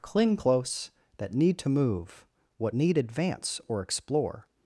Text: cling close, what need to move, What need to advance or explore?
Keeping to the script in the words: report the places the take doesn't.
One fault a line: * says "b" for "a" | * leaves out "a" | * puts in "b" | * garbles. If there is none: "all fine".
* says "that" for "what"
* leaves out "to"